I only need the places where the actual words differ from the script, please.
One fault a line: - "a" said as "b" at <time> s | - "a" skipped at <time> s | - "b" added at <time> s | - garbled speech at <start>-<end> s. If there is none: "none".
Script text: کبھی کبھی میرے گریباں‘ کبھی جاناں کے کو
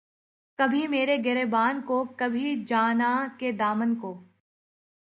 - "کبھی" skipped at 0.9 s
- "کو" added at 1.9 s
- "دامن" added at 3.5 s